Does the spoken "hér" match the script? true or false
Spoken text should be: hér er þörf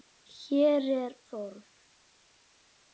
true